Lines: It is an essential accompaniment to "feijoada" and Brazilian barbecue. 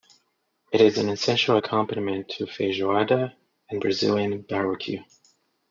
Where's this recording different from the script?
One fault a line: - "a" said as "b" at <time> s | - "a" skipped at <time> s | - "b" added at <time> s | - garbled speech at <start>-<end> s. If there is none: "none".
none